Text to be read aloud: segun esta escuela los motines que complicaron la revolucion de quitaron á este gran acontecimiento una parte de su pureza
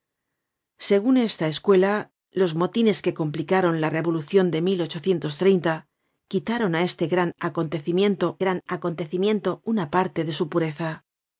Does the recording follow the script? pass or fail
fail